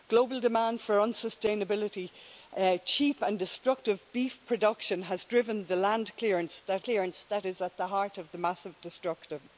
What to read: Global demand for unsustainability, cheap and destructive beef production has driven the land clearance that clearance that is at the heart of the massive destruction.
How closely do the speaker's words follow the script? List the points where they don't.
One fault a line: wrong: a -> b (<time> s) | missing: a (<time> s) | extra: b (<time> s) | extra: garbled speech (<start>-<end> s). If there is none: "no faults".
no faults